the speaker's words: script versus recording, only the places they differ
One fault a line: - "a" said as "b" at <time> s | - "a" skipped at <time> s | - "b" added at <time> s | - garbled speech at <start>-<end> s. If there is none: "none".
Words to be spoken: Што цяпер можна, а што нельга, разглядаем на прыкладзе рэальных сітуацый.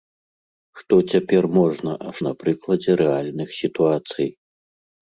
- "што нельга разглядаем" skipped at 2.1 s